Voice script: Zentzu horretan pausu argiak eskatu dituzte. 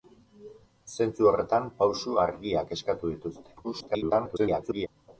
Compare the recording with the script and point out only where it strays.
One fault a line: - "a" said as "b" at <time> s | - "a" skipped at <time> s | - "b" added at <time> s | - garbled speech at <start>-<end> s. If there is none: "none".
- garbled speech at 3.6-4.9 s